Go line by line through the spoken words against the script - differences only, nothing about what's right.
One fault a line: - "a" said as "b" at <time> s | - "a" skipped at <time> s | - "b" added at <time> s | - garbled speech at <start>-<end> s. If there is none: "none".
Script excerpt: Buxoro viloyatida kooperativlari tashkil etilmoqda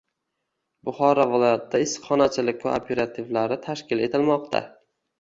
- "issiqxonachilik" added at 1.9 s